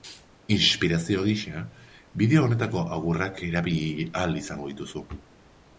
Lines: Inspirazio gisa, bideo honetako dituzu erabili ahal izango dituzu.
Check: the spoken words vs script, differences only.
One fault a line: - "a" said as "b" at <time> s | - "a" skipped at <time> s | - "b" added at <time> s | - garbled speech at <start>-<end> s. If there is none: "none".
- "dituzu" said as "agurrak" at 3.0 s